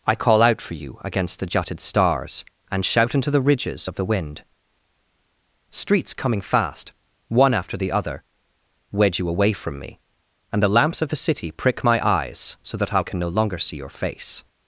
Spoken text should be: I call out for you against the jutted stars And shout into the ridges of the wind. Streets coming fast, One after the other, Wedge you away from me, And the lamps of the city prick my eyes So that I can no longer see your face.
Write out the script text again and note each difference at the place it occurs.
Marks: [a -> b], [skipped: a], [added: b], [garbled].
I call out for you against the jutted stars And shout into the ridges of the wind. Streets coming fast, One after the other, Wedge you away from me, And the lamps of the city prick my eyes So that I can no longer see your face.